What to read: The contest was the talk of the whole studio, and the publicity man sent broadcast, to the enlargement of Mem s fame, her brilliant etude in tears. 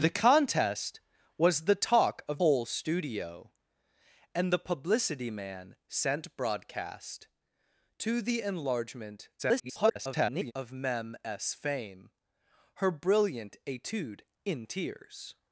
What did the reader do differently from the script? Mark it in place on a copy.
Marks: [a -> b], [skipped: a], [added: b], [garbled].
The contest was the talk of [skipped: the] whole studio, and the publicity man sent broadcast, to the enlargement [garbled] of Mem s fame, her brilliant etude in tears.